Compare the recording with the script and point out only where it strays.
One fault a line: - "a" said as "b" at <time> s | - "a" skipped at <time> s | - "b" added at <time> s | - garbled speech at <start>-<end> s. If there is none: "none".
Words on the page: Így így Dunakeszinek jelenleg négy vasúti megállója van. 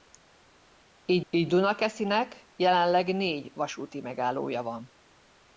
none